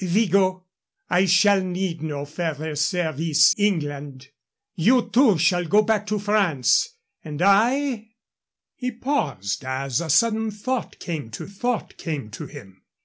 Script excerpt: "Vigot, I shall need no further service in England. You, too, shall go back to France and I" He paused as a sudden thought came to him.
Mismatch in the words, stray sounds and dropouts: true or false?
true